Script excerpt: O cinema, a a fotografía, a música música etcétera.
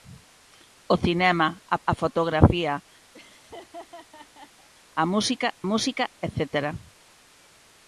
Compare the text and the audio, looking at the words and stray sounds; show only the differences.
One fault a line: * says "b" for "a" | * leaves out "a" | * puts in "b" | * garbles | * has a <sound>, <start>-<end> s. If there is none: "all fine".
* has a laugh, 3.1-4.7 s